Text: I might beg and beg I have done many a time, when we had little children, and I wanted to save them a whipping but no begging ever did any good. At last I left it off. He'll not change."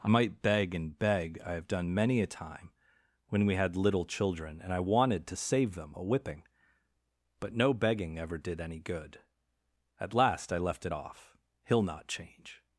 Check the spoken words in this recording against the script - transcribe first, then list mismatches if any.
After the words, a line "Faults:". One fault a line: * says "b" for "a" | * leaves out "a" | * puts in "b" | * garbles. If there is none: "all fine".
I might beg and beg I have done many a time, when we had little children, and I wanted to save them a whipping but no begging ever did any good. At last I left it off. He'll not change."
Faults:
all fine